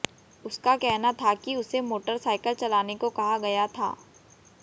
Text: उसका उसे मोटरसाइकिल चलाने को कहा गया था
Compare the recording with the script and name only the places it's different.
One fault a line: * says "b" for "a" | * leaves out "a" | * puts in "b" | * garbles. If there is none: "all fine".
* puts in "कहना था कि"